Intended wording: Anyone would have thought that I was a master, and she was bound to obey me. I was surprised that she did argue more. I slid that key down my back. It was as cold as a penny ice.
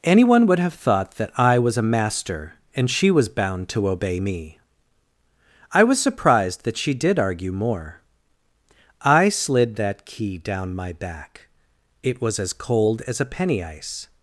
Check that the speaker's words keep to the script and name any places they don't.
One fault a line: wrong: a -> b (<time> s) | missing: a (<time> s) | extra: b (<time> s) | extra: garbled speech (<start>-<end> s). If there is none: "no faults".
no faults